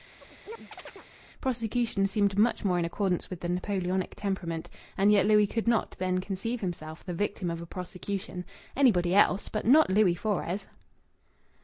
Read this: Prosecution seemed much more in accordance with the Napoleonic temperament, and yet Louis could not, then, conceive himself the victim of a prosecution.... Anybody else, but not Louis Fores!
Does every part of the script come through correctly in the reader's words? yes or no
yes